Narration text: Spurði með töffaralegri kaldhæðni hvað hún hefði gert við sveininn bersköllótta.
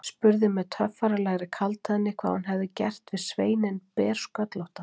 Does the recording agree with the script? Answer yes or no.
yes